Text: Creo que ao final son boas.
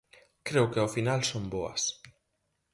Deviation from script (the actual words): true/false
false